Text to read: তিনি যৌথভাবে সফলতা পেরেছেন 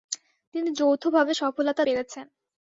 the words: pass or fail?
pass